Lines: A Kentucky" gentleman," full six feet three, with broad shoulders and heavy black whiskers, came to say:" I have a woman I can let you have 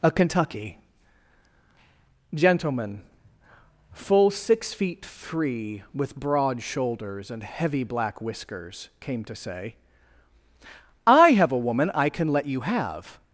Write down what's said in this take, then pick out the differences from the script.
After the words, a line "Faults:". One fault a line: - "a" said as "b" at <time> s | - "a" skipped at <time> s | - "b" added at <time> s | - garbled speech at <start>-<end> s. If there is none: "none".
A Kentucky" gentleman," full six feet three, with broad shoulders and heavy black whiskers, came to say:" I have a woman I can let you have
Faults:
none